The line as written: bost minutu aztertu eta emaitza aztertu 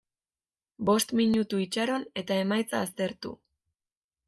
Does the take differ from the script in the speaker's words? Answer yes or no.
yes